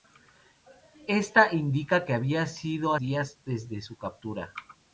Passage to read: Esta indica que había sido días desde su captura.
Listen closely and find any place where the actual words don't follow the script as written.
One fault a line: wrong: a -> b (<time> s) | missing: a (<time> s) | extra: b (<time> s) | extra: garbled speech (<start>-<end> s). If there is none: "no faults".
no faults